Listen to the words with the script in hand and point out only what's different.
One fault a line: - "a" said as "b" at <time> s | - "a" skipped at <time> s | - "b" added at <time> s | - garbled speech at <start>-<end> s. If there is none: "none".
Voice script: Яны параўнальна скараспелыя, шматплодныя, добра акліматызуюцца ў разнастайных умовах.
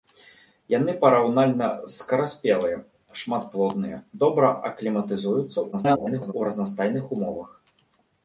- garbled speech at 5.7-6.3 s